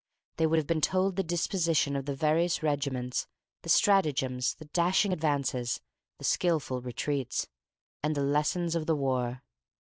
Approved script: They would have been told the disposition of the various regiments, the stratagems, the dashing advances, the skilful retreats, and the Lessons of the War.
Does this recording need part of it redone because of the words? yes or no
no